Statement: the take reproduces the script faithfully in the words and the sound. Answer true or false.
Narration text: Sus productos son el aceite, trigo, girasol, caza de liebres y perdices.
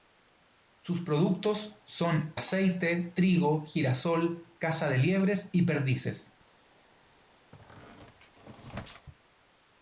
false